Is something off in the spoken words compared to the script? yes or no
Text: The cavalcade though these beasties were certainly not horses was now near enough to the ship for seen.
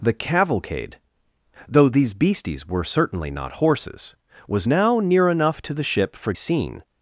no